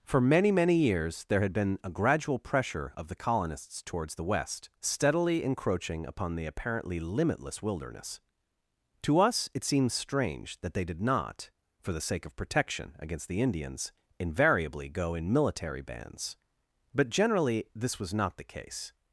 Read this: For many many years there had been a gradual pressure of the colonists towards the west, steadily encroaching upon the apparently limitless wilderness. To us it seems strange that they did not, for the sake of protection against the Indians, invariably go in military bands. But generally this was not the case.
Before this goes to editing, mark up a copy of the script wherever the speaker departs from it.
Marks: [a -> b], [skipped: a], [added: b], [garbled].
For many many years there had been a gradual pressure of the colonists towards the west, steadily encroaching upon the apparently limitless wilderness. To us it seems strange that they did not, for the sake of protection against the Indians, invariably go in military bands. But generally this was not the case.